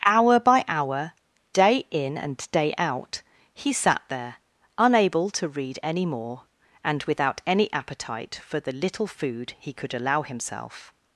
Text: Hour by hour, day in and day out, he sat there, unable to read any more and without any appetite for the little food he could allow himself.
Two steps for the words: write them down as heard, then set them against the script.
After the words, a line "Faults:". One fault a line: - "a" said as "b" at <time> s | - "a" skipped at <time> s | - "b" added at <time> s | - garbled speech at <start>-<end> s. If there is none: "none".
Hour by hour, day in and day out, he sat there, unable to read any more and without any appetite for the little food he could allow himself.
Faults:
none